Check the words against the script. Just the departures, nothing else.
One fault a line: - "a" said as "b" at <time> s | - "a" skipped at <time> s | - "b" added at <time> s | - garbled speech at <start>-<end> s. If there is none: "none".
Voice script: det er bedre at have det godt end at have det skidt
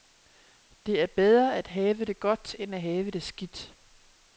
none